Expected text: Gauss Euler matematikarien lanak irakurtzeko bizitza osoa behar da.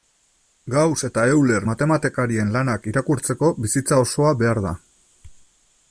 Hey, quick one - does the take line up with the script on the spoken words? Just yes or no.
no